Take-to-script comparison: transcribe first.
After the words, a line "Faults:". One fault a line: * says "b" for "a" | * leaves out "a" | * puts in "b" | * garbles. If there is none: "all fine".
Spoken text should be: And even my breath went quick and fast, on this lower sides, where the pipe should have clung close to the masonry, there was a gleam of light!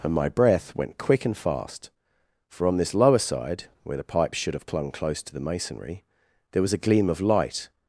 And my breath went quick and fast, for on this lower side, where the pipe should have clung close to the masonry, there was a gleam of light!
Faults:
* leaves out "even"
* puts in "for"
* says "side" for "sides"